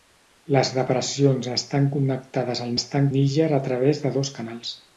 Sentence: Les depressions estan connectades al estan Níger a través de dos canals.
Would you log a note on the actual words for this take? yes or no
no